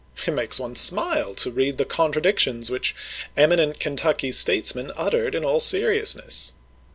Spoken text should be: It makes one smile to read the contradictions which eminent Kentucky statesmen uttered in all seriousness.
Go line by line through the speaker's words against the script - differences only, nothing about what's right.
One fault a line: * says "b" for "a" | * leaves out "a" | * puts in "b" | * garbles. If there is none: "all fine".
all fine